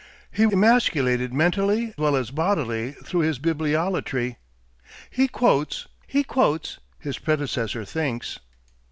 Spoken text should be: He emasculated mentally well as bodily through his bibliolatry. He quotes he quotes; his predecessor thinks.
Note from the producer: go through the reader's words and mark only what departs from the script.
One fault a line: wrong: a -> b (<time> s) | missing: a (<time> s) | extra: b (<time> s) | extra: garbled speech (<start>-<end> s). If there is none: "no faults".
no faults